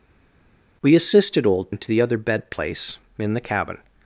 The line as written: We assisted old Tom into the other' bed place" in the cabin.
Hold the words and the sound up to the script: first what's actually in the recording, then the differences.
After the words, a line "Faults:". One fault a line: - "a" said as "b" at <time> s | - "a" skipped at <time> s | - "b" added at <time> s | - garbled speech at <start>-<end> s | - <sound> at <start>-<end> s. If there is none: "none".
We assisted old Into the other' bed place" in the cabin.
Faults:
- "Tom" skipped at 1.7 s